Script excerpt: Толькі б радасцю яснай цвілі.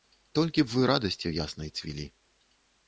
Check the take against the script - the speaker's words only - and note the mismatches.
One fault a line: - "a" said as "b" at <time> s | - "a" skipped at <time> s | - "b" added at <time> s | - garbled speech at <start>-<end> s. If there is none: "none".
- "вы" added at 0.7 s